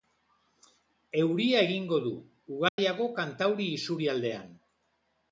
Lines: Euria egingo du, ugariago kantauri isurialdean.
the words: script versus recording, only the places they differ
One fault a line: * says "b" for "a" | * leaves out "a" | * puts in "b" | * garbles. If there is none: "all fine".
all fine